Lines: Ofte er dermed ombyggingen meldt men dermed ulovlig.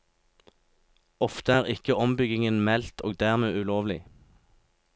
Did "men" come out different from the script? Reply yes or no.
yes